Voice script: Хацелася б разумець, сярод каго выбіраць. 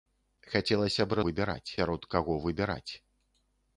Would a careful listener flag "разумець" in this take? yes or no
yes